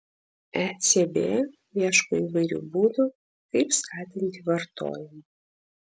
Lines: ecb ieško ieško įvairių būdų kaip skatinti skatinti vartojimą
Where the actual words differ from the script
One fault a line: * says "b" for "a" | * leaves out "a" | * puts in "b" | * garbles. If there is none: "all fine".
* leaves out "ieško"
* leaves out "skatinti"